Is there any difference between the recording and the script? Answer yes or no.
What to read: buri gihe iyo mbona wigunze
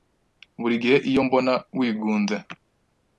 no